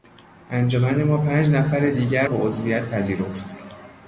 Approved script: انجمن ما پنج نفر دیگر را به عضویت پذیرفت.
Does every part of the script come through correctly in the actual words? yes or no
no